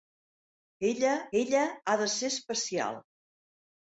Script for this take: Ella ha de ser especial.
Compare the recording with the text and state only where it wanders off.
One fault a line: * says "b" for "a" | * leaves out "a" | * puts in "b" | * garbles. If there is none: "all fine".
* puts in "ella"